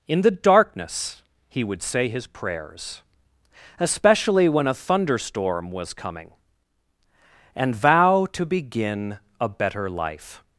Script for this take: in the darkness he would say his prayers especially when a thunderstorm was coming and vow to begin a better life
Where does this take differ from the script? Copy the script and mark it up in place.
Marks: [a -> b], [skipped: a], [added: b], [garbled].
in the darkness he would say his prayers especially when a thunderstorm was coming and vow to begin a better life